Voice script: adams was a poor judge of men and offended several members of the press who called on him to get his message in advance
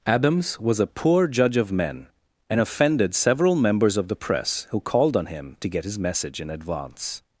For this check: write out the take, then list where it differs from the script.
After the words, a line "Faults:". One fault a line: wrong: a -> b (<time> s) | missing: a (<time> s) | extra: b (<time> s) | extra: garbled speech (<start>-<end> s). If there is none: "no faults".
adams was a poor judge of men and offended several members of the press who called on him to get his message in advance
Faults:
no faults